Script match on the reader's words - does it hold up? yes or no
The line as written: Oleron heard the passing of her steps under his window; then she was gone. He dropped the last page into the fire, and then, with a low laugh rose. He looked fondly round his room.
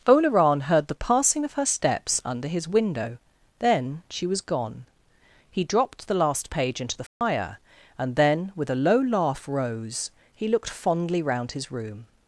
yes